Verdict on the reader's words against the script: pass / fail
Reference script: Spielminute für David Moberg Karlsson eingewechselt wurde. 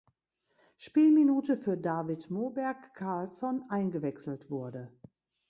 pass